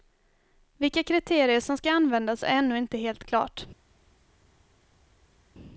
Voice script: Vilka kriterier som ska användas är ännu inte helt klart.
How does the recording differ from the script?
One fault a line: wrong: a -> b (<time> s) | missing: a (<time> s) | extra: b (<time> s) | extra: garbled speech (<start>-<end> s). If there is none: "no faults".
no faults